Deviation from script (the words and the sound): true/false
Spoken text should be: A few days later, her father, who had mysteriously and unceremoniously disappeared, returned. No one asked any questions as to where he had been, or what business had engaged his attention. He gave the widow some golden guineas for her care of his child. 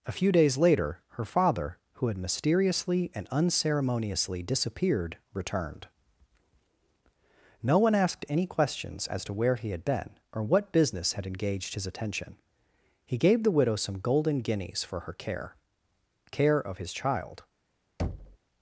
true